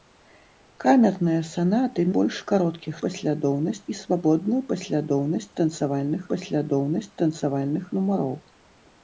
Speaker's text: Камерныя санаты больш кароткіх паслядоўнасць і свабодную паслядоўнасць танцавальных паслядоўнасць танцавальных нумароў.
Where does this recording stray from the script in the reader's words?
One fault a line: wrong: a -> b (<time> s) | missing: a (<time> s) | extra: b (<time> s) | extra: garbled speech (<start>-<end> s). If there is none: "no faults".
no faults